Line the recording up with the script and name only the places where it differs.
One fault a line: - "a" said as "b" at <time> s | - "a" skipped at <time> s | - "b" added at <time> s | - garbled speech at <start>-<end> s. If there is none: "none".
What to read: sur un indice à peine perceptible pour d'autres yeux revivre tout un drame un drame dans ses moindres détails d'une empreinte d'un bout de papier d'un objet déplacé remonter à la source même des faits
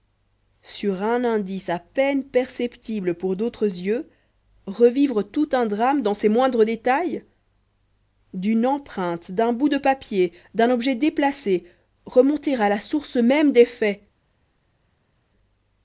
- "un drame" skipped at 6.0 s